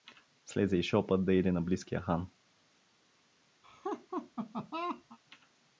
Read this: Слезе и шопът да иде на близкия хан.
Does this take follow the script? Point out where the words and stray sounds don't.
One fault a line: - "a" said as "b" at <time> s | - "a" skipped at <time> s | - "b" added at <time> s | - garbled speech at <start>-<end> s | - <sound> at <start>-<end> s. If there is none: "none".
- laugh at 3.6-5.2 s